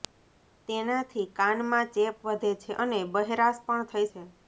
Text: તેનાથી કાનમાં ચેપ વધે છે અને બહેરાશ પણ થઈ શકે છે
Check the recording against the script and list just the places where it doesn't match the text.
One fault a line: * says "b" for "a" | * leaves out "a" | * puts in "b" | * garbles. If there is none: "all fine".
* leaves out "શકે"